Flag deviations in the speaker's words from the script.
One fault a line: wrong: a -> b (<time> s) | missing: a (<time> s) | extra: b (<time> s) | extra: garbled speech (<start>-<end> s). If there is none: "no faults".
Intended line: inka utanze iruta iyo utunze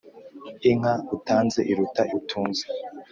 missing: iyo (2.0 s)